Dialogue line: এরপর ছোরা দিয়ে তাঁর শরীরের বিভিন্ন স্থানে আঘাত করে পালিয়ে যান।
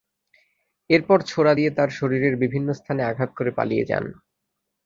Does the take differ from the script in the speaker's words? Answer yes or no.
no